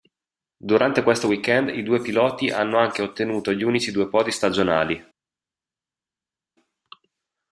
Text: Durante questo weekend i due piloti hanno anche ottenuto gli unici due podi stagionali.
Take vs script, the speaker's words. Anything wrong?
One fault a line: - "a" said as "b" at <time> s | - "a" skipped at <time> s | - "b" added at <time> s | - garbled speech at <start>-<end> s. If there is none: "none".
none